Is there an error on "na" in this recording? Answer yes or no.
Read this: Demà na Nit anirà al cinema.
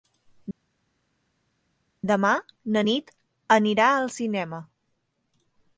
no